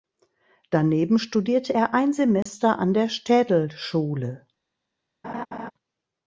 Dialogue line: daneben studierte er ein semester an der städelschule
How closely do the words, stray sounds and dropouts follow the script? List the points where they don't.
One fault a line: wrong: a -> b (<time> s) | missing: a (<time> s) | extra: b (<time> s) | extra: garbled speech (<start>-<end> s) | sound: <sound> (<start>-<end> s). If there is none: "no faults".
sound: dropout (2.4-2.5 s)
sound: laugh (5.2-5.7 s)